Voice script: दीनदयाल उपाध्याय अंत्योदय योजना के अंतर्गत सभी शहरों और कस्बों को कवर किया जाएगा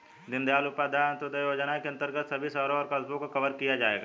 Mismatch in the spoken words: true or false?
false